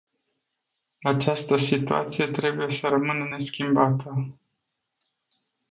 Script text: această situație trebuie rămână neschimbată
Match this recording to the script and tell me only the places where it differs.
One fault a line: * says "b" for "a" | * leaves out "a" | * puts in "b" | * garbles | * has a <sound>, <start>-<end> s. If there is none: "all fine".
* puts in "să"